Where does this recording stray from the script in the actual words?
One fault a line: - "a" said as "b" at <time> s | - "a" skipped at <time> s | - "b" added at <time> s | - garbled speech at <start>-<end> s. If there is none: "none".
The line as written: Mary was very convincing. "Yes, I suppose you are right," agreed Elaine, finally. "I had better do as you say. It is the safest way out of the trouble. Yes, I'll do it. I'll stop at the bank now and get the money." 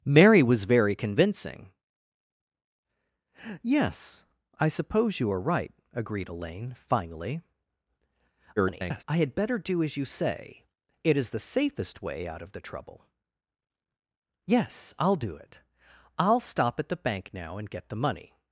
- garbled speech at 8.6-9.0 s